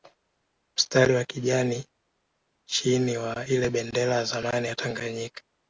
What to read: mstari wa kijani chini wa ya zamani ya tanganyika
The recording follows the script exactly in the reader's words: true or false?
false